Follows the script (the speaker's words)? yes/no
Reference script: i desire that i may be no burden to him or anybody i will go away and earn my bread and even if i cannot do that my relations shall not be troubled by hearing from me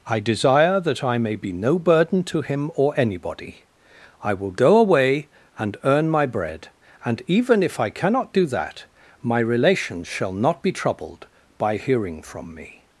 yes